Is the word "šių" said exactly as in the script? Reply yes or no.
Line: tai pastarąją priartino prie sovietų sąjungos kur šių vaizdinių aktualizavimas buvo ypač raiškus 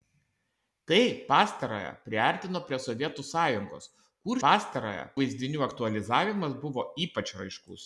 no